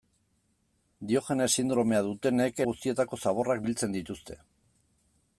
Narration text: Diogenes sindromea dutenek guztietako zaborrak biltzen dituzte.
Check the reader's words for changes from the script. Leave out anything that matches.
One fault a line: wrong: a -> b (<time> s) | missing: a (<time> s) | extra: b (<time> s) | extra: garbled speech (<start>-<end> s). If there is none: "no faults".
no faults